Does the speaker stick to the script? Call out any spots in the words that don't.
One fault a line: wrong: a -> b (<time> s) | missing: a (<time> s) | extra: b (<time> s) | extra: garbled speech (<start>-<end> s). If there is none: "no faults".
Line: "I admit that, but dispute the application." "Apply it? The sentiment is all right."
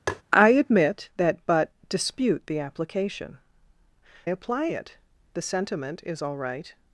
no faults